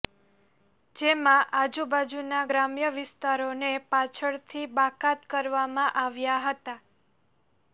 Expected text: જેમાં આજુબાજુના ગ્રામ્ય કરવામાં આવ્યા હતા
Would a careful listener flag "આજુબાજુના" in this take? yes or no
no